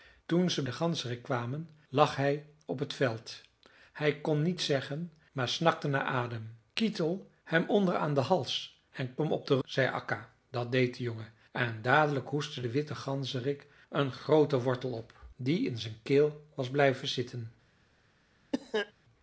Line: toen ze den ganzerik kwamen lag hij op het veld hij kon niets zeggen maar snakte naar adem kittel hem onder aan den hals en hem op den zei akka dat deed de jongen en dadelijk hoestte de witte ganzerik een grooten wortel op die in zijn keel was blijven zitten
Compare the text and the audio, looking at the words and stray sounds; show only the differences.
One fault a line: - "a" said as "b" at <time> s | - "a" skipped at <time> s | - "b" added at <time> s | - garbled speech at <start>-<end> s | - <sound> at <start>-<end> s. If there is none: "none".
- cough at 18.5-18.9 s